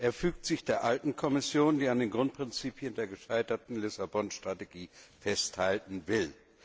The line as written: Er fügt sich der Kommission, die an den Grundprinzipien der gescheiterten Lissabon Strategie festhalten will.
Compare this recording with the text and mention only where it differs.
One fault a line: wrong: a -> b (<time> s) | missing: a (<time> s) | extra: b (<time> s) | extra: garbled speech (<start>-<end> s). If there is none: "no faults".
extra: alten (0.8 s)